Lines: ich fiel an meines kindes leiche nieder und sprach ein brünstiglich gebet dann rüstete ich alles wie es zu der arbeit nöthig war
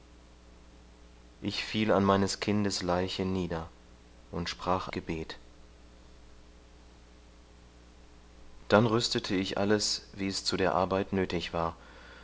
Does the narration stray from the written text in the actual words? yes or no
yes